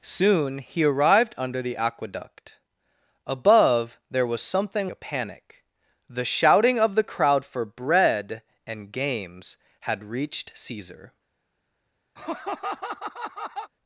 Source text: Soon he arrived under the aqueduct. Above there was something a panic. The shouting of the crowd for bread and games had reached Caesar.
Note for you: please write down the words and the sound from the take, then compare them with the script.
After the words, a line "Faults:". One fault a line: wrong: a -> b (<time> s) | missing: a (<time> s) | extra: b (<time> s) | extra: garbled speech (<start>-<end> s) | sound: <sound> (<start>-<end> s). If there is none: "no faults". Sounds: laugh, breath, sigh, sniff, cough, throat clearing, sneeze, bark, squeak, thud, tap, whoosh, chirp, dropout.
Soon he arrived under the aqueduct. Above there was something a panic. The shouting of the crowd for bread and games had reached Caesar.
Faults:
sound: laugh (12.2-13.7 s)